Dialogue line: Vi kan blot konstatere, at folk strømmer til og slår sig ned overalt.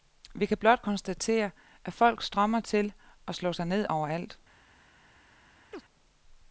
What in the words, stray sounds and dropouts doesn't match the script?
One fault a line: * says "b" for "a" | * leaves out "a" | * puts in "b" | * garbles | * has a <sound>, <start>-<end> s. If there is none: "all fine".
* has a chirp, 5.7-5.8 s